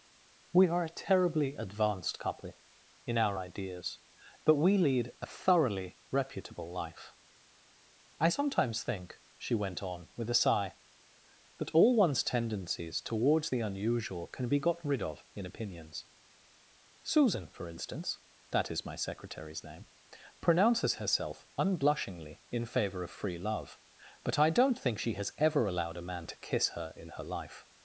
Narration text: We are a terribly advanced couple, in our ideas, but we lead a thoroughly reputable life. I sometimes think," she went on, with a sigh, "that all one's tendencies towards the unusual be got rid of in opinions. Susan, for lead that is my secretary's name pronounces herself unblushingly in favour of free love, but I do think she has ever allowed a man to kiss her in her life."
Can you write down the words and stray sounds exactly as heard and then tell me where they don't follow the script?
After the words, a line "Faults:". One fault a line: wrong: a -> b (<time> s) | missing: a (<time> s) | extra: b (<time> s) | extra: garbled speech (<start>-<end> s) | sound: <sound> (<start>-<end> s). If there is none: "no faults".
We are a terribly advanced couple, in our ideas, but we lead a thoroughly reputable life. I sometimes think," she went on, with a sigh, "that all one's tendencies towards the unusual can be got rid of in opinions. Susan, for instance that is my secretary's name pronounces herself unblushingly in favour of free love, but I don't think she has ever allowed a man to kiss her in her life."
Faults:
extra: can (14.3 s)
wrong: lead -> instance (17.7 s)
wrong: do -> don't (24.5 s)